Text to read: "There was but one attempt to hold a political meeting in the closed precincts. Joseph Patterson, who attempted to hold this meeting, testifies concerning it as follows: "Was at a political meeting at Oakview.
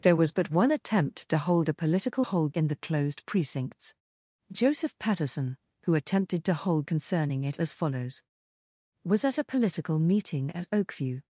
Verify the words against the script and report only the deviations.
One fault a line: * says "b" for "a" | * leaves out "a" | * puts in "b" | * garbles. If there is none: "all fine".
* says "hold" for "meeting"
* leaves out "this meeting testifies"